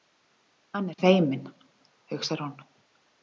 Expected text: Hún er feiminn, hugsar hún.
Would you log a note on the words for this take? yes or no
yes